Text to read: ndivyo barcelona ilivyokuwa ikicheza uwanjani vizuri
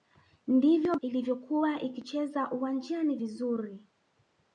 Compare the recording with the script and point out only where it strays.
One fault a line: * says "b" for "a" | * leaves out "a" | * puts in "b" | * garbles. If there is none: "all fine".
* leaves out "barcelona"